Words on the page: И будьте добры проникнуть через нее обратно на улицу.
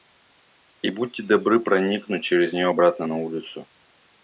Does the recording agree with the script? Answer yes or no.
yes